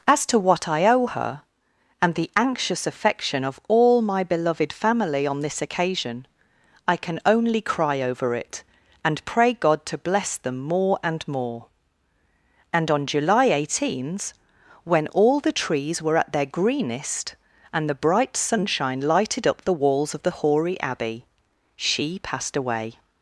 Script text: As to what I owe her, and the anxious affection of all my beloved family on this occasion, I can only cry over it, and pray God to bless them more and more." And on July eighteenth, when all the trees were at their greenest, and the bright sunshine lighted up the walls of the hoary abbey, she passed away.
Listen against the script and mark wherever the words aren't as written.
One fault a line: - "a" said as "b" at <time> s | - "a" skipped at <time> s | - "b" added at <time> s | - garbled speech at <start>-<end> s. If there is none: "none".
none